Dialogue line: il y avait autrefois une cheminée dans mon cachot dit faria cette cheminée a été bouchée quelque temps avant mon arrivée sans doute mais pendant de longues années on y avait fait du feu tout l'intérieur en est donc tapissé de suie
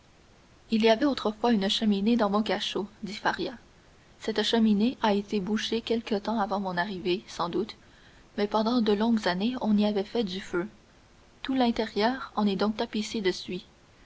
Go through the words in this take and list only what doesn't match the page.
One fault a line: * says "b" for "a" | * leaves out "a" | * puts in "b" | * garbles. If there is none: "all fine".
all fine